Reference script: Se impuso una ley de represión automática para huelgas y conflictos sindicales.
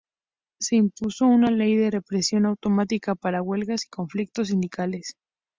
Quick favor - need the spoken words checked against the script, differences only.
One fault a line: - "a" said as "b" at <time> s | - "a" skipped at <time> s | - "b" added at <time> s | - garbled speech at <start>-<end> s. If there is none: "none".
none